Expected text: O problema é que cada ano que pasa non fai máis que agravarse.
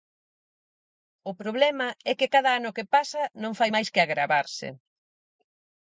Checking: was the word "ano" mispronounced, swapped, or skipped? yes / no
no